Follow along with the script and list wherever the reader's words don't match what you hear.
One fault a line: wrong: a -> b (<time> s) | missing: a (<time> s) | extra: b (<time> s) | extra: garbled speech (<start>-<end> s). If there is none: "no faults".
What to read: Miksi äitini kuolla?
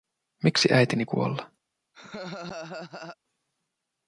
no faults